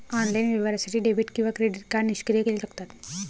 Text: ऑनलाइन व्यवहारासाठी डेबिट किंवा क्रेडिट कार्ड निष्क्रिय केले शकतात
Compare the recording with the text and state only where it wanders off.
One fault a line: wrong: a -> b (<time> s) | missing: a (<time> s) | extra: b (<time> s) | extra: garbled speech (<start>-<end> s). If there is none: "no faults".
no faults